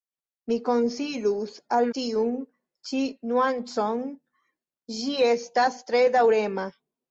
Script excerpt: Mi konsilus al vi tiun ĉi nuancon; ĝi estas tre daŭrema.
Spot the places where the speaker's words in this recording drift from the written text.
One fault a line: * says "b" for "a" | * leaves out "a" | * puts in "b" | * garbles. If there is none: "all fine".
* leaves out "vi"